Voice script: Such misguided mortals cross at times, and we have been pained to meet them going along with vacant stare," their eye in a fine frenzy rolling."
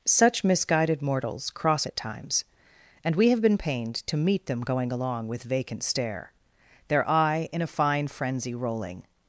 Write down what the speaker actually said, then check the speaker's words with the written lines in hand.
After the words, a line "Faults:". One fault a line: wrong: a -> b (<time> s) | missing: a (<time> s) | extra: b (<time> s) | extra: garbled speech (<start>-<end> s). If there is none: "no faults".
Such misguided mortals cross at times, and we have been pained to meet them going along with vacant stare," their eye in a fine frenzy rolling."
Faults:
no faults